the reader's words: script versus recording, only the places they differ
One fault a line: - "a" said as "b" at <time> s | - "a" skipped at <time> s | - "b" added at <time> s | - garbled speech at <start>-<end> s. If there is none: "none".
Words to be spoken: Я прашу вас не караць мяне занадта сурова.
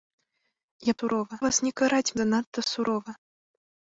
- "прашу" said as "сурова" at 1.0 s
- "мяне" skipped at 2.1 s